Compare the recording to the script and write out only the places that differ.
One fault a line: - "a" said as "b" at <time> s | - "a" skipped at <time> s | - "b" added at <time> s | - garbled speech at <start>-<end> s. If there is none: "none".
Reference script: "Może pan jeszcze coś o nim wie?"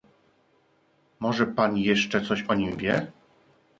none